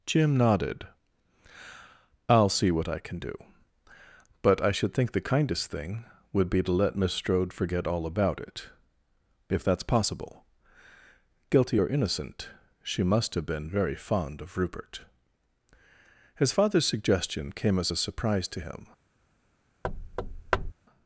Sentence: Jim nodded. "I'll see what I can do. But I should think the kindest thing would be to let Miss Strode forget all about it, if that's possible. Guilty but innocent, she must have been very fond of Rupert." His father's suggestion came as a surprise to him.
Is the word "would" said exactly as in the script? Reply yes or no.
yes